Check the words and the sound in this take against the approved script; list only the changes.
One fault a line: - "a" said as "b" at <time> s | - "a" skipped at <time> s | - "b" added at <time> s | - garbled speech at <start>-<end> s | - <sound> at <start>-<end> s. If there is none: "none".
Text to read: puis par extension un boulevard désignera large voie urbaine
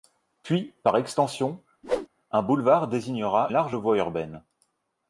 - whoosh at 1.8-2.1 s